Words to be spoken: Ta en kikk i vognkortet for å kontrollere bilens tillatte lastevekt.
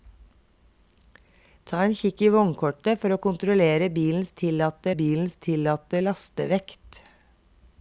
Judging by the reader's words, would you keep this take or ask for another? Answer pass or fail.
fail